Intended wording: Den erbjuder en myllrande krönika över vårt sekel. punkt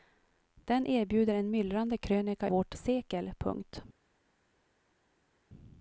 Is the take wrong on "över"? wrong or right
wrong